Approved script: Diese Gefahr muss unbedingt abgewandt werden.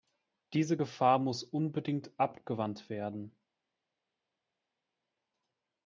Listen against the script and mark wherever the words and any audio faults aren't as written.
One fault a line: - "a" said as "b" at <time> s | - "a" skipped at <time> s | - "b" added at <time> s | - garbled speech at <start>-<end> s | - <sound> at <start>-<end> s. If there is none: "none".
none